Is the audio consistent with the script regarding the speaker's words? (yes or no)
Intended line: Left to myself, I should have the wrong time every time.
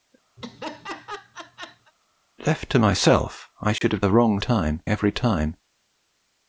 yes